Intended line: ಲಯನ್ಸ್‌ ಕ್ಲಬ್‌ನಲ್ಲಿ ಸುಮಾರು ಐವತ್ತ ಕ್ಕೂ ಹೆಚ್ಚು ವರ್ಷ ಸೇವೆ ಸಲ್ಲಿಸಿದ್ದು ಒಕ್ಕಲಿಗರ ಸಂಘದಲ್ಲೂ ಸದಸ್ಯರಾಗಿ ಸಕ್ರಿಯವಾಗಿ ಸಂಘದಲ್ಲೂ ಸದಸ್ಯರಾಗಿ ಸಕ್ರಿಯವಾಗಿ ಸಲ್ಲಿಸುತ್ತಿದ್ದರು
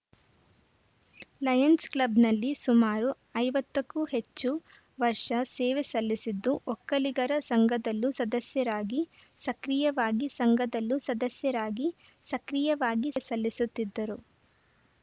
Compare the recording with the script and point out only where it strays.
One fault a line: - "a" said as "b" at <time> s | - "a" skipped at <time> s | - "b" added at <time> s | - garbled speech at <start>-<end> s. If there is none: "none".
none